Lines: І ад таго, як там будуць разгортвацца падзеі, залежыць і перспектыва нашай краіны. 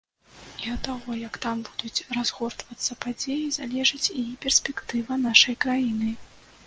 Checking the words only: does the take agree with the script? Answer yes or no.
yes